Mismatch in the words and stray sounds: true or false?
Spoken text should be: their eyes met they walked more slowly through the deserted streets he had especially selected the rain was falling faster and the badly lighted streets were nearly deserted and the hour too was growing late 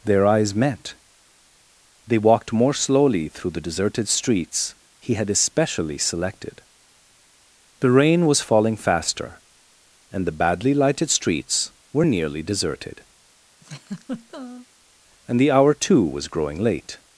true